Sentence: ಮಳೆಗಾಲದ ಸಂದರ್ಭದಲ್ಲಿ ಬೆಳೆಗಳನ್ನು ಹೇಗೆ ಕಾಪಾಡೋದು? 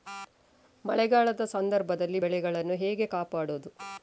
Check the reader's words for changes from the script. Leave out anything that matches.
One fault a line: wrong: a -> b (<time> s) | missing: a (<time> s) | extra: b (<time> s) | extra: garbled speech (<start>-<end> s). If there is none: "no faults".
no faults